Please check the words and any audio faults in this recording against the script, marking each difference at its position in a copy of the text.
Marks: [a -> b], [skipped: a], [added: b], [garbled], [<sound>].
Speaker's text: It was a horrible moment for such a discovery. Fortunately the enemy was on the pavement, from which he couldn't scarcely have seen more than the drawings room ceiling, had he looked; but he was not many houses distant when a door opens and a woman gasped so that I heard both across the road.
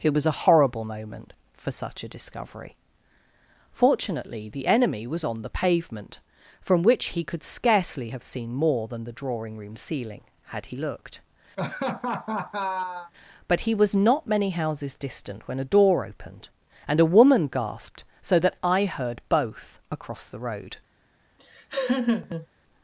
It was a horrible moment for such a discovery. Fortunately the enemy was on the pavement, from which he [couldn't -> could] scarcely have seen more than the [drawings -> drawing] room ceiling, had he looked; [laugh] but he was not many houses distant when a door [opens -> opened] and a woman gasped so that I heard both across the road. [laugh]